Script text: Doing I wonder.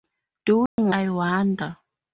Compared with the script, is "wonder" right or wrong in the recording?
right